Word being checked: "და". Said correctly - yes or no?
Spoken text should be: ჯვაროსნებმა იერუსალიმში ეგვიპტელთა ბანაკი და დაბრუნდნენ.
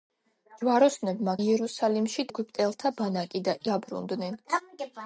yes